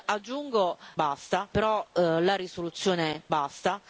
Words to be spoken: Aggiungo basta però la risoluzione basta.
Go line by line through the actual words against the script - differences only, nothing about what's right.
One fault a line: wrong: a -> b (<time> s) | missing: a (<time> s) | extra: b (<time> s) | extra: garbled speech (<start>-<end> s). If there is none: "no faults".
no faults